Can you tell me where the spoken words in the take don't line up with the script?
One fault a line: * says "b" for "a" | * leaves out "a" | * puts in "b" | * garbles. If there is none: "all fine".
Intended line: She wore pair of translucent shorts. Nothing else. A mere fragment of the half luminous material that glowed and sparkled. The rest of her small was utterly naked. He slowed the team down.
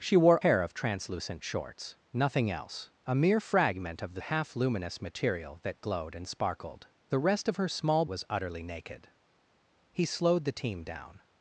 all fine